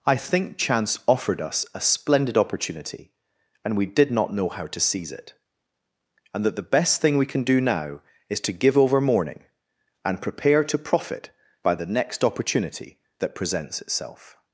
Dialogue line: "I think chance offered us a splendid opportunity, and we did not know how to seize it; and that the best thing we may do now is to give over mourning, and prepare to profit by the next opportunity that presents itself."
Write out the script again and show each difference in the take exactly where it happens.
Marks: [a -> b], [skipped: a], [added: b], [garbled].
"I think chance offered us a splendid opportunity, and we did not know how to seize it; and that the best thing we [may -> can] do now is to give over mourning, and prepare to profit by the next opportunity that presents itself."